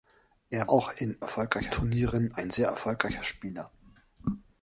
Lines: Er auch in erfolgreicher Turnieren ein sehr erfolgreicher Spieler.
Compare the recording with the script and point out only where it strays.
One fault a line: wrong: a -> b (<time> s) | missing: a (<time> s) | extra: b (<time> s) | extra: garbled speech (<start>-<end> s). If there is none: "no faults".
no faults